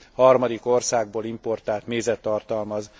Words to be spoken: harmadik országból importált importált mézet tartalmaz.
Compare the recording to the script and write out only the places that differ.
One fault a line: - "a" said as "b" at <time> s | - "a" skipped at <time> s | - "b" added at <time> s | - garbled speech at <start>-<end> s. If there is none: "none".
- "importált" skipped at 1.9 s